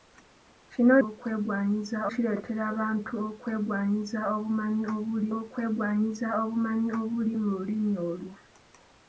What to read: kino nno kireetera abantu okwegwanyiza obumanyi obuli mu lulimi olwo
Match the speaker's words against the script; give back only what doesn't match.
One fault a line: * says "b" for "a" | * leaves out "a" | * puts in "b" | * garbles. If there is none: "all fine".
* says "okwegwanyiza" for "nno"
* puts in "okwegwanyiza obumanyi obuli"